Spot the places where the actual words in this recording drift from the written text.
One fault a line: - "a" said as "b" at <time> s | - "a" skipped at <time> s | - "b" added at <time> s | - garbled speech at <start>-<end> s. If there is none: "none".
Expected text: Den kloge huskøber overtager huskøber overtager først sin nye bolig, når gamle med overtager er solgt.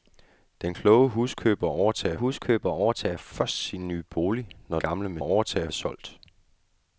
none